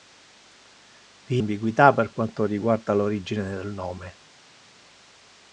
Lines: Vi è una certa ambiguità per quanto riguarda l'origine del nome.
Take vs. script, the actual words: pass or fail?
fail